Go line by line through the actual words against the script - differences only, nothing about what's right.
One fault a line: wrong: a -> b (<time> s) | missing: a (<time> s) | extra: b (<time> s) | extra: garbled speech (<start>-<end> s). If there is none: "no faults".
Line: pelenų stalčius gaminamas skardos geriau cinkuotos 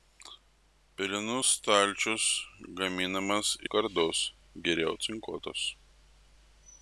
no faults